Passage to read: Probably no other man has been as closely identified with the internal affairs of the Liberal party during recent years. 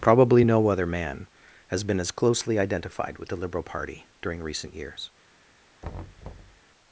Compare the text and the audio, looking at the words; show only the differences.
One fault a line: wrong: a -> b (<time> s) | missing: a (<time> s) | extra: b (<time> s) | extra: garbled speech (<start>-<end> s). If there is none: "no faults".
missing: internal affairs of the (3.4 s)